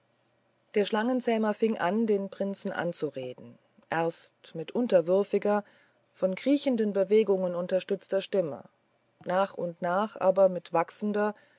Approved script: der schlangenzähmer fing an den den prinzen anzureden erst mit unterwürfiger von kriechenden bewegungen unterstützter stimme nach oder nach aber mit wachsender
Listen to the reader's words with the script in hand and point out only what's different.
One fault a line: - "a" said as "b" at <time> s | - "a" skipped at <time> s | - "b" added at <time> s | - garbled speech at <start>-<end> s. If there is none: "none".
- "den" skipped at 2.3 s
- "oder" said as "und" at 9.5 s